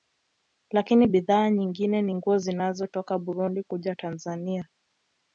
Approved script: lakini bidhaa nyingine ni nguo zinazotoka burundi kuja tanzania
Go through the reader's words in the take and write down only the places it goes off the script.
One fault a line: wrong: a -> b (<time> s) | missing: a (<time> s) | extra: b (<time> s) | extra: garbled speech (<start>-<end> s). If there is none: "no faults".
no faults